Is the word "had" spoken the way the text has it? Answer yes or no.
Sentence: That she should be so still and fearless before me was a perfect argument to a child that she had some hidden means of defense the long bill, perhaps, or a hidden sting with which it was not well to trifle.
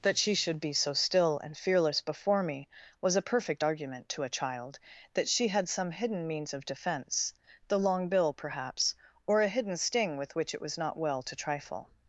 yes